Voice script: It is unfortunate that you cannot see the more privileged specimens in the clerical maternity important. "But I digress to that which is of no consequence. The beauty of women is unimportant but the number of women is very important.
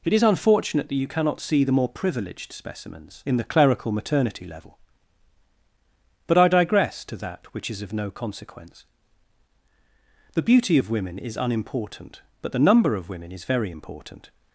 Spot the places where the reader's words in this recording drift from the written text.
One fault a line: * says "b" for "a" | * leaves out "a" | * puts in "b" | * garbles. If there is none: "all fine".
* says "level" for "important"